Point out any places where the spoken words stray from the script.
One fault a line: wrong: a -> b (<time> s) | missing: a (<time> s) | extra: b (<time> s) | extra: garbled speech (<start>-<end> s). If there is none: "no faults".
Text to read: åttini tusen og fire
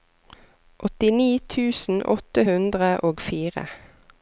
extra: åtte hundre (2.1 s)